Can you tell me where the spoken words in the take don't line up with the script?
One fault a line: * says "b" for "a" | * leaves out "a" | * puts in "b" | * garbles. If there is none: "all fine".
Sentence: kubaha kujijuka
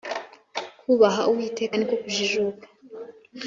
* puts in "uwiteka niko"